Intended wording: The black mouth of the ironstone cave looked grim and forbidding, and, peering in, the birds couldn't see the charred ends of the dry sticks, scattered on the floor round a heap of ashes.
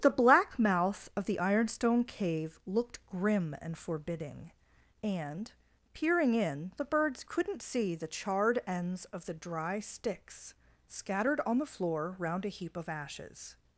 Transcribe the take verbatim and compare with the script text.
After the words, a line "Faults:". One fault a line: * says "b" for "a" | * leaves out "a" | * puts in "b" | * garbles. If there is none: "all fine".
The black mouth of the ironstone cave looked grim and forbidding, and, peering in, the birds couldn't see the charred ends of the dry sticks, scattered on the floor round a heap of ashes.
Faults:
all fine